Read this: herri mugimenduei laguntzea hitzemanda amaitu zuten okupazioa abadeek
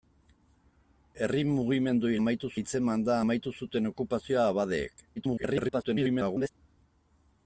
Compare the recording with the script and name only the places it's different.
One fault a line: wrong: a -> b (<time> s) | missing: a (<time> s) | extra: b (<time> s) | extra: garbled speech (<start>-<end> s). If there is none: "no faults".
wrong: laguntzea -> amaitu (2.2 s)
extra: garbled speech (5.2-6.5 s)